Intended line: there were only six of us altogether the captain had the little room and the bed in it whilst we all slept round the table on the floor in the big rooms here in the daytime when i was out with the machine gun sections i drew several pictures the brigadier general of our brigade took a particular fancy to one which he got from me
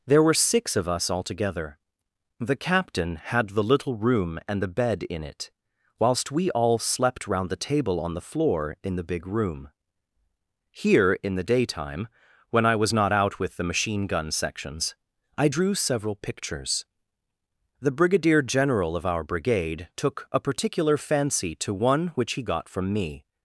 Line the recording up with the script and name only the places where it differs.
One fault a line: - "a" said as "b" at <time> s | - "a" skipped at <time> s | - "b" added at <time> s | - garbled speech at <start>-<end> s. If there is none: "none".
- "only" skipped at 0.3 s
- "rooms" said as "room" at 9.3 s
- "not" added at 12.9 s